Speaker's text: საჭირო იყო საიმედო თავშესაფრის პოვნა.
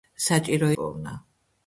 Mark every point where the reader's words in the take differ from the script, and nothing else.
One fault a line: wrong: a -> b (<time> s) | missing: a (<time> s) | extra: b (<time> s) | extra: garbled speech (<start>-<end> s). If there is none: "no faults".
missing: იყო საიმედო თავშესაფრის (0.7 s)